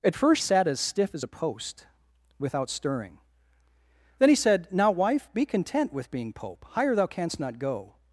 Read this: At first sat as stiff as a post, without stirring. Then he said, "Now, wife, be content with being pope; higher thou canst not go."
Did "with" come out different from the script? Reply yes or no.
no